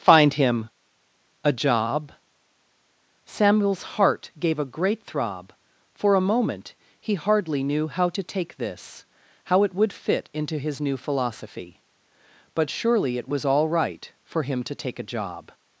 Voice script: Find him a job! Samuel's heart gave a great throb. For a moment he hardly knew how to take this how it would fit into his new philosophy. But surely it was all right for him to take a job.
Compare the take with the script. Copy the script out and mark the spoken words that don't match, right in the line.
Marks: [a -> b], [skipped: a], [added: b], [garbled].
Find him a job! Samuel's heart gave a great throb. For a moment he hardly knew how to take this how it would fit into his new philosophy. But surely it was all right for him to take a job.